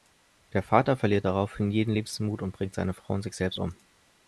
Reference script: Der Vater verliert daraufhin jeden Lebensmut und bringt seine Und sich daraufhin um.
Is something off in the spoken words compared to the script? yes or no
yes